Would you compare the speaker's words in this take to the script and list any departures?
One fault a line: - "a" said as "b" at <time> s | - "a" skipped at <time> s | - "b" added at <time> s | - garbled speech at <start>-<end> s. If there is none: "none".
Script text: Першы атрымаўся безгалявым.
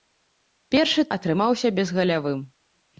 none